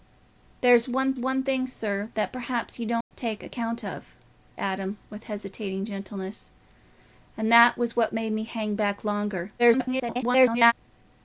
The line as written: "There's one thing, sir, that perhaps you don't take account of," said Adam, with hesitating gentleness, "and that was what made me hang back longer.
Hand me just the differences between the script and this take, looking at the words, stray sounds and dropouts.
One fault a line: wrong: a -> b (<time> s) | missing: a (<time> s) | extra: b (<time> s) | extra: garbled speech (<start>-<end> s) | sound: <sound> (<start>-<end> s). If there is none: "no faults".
extra: one (1.2 s)
sound: dropout (3.0-3.1 s)
missing: said (4.1 s)
extra: garbled speech (9.6-10.7 s)